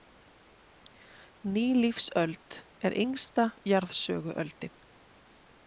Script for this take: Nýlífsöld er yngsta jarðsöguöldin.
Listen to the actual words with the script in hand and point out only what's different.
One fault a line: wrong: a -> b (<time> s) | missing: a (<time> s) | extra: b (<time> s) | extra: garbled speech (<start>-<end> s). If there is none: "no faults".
no faults